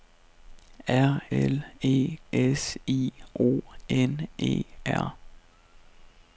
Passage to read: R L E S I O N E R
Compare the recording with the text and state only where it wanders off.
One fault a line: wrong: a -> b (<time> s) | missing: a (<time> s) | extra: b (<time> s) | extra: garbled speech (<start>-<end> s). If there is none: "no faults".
no faults